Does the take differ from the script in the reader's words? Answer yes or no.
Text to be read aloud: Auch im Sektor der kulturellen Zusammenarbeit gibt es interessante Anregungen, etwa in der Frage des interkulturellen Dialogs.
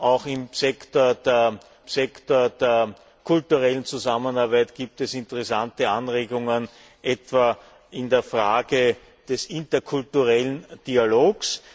yes